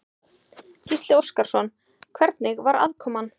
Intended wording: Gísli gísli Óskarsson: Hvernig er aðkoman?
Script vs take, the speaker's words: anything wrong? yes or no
yes